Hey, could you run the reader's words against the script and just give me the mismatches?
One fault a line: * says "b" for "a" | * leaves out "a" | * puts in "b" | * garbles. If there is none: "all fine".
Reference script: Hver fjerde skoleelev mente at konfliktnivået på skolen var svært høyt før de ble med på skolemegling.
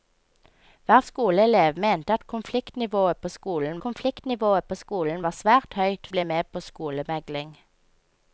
* leaves out "fjerde"
* puts in "konfliktnivået på skolen"
* leaves out "før de"